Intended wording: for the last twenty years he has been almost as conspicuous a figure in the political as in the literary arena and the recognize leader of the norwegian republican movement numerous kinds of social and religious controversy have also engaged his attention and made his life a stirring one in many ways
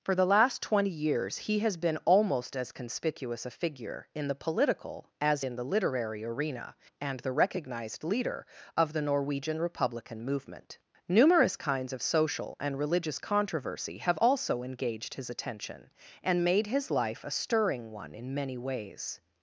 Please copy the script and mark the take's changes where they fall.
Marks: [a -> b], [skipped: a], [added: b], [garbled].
for the last twenty years he has been almost as conspicuous a figure in the political as in the literary arena and the [recognize -> recognized] leader of the norwegian republican movement numerous kinds of social and religious controversy have also engaged his attention and made his life a stirring one in many ways